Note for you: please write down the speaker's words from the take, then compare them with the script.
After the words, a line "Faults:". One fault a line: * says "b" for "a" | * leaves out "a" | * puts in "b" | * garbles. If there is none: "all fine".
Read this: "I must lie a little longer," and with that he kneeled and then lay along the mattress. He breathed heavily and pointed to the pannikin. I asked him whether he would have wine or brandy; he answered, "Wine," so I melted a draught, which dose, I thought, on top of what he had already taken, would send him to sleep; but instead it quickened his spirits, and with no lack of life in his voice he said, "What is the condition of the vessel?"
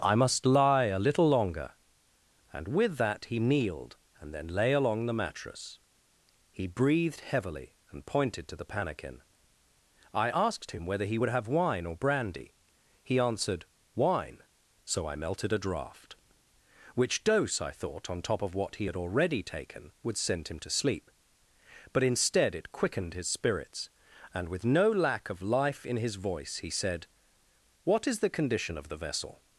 "I must lie a little longer," and with that he kneeled and then lay along the mattress. He breathed heavily and pointed to the pannikin. I asked him whether he would have wine or brandy; he answered, "Wine," so I melted a draught, which dose, I thought, on top of what he had already taken, would send him to sleep; but instead it quickened his spirits, and with no lack of life in his voice he said, "What is the condition of the vessel?"
Faults:
all fine